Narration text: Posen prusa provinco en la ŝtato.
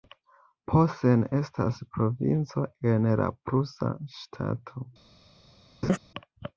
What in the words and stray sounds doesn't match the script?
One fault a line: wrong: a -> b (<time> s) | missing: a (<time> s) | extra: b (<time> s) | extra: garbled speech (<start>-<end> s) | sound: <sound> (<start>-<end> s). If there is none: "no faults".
wrong: prusa -> estas (1.4 s)
extra: prusa (3.5 s)
sound: laugh (5.8-6.0 s)